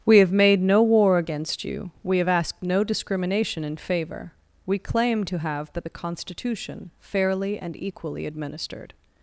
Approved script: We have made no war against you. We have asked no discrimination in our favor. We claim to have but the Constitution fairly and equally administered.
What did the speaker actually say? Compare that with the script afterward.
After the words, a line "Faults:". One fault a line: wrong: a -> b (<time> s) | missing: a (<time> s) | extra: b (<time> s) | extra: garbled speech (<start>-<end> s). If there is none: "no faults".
We have made no war against you. We have asked no discrimination in favor. We claim to have but the Constitution fairly and equally administered.
Faults:
missing: our (3.8 s)